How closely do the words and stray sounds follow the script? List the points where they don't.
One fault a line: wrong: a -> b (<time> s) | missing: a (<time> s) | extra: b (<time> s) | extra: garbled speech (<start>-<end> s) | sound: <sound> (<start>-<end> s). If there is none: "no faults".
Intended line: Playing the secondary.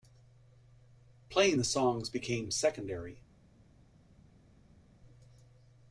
extra: songs became (1.6 s)